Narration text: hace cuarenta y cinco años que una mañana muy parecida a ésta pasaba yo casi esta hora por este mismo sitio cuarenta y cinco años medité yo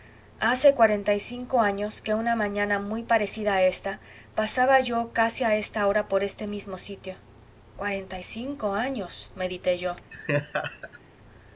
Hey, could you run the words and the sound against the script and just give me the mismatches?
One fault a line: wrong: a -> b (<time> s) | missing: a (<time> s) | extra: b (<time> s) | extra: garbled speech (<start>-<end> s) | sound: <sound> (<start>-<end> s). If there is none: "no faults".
extra: a (5.4 s)
sound: laugh (10.1-11.0 s)